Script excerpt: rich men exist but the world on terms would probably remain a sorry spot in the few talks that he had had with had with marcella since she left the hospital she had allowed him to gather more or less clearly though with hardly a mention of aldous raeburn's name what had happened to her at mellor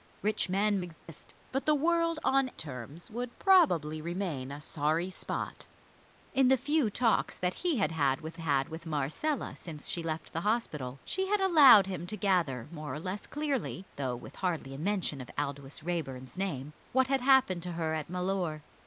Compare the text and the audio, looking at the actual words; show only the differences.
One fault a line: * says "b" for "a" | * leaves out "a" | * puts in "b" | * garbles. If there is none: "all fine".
all fine